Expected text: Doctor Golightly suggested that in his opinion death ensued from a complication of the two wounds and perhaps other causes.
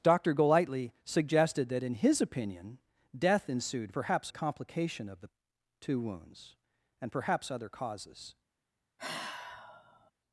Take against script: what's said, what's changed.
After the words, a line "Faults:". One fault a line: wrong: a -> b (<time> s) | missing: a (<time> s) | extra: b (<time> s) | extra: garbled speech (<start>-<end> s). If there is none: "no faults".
Doctor Golightly suggested that in his opinion death ensued perhaps a complication of the two wounds and perhaps other causes.
Faults:
wrong: from -> perhaps (3.9 s)